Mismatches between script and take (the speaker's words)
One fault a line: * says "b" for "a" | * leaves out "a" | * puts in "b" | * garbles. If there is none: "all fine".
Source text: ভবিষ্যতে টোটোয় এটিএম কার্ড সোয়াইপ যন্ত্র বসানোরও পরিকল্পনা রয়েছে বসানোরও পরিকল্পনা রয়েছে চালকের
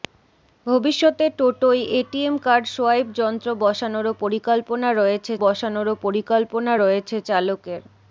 all fine